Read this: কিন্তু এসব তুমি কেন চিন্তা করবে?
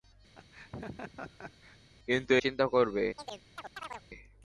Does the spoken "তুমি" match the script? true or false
false